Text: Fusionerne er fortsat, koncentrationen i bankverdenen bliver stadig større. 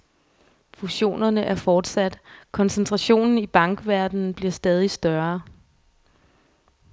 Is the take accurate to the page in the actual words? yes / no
yes